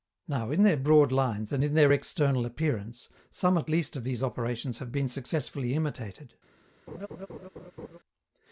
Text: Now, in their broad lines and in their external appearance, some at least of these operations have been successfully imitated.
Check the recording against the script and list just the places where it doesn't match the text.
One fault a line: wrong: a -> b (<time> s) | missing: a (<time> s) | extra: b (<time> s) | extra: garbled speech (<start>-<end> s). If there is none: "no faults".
no faults